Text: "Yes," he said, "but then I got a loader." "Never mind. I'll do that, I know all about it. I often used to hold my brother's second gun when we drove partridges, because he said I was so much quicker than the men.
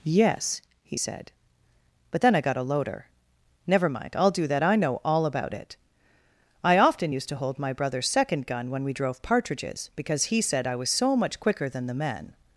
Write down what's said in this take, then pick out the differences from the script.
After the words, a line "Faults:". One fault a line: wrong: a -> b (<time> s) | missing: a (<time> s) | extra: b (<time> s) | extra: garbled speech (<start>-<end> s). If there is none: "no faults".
"Yes," he said, "but then I got a loader." "Never mind. I'll do that, I know all about it. I often used to hold my brother's second gun when we drove partridges, because he said I was so much quicker than the men.
Faults:
no faults